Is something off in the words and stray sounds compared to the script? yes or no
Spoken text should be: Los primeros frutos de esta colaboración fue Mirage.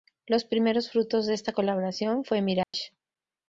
yes